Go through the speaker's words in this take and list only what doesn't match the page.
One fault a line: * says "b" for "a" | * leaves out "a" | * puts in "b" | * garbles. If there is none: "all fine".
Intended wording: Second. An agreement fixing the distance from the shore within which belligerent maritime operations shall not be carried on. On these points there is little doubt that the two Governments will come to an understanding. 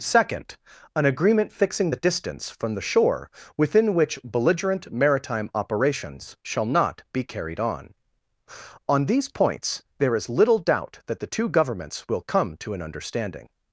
all fine